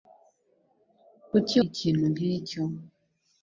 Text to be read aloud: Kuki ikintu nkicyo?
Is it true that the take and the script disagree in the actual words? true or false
false